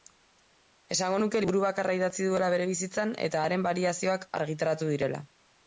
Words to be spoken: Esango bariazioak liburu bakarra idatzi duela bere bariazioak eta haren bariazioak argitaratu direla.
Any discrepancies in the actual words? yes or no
yes